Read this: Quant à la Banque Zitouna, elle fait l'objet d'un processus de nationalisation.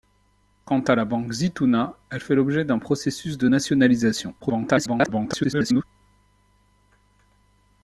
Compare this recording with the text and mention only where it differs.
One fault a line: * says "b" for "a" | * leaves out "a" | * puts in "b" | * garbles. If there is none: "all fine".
* garbles